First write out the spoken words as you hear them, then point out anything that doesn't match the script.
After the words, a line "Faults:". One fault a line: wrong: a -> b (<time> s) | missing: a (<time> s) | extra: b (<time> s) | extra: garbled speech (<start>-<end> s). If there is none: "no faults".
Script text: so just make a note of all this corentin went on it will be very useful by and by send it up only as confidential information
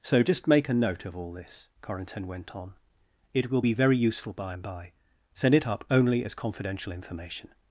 so just make a note of all this corentin went on it will be very useful by and by send it up only as confidential information
Faults:
no faults